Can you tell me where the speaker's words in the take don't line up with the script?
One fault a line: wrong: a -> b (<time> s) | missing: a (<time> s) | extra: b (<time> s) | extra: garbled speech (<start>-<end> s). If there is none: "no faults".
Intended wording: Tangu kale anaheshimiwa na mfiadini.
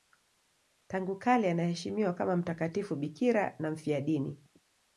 extra: kama mtakatifu bikira (2.1 s)